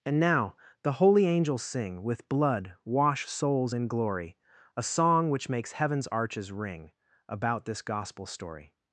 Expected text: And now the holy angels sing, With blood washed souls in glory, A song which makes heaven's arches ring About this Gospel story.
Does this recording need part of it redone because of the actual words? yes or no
yes